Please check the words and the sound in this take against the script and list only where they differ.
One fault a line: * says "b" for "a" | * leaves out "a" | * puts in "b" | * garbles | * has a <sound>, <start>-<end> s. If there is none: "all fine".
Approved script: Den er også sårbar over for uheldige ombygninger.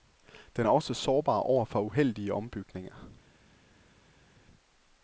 all fine